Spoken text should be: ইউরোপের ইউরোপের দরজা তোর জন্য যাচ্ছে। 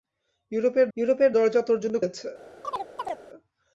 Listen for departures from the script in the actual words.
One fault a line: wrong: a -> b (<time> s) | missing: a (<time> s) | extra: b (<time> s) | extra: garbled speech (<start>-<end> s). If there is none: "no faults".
no faults